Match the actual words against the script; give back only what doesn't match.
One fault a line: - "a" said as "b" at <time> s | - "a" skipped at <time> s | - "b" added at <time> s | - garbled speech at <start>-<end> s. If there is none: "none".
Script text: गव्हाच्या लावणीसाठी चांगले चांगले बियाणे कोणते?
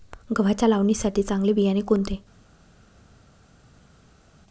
- "चांगले" skipped at 1.5 s